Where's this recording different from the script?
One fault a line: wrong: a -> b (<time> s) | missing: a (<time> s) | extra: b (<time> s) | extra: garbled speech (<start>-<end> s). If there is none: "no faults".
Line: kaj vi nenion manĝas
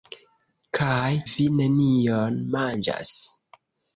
no faults